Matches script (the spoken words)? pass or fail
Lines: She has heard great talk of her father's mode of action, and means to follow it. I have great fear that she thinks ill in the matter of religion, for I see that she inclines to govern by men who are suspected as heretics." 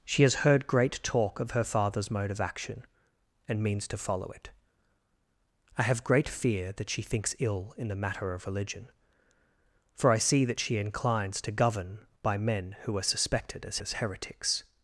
fail